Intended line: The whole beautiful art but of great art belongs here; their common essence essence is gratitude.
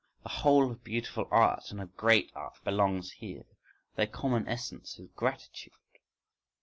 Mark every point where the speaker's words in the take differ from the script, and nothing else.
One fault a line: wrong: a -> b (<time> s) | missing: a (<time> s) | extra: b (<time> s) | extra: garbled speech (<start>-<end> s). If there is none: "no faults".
extra: of (0.7 s)
wrong: but -> and (1.7 s)
missing: essence (5.0 s)